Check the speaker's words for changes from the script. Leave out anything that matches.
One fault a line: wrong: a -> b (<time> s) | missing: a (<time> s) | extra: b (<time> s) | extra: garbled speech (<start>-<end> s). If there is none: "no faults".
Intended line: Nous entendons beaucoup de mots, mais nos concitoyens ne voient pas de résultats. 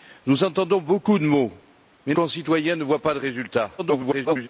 missing: nos (2.1 s)
extra: garbled speech (3.8-4.5 s)